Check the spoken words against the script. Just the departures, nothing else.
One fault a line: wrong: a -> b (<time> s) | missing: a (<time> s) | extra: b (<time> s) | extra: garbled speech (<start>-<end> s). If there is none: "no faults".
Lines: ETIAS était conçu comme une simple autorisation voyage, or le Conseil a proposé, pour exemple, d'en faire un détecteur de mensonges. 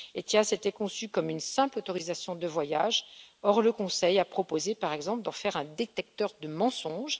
extra: de (2.4 s)
wrong: pour -> par (4.8 s)